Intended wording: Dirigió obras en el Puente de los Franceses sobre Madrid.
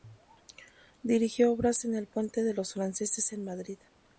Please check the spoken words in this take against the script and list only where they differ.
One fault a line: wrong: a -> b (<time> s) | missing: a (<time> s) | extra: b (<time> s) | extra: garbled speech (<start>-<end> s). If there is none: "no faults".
wrong: sobre -> en (3.3 s)